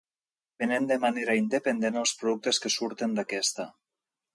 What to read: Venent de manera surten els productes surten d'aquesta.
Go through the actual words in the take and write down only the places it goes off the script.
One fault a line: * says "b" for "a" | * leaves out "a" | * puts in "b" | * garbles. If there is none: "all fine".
* says "independent" for "surten"
* puts in "que"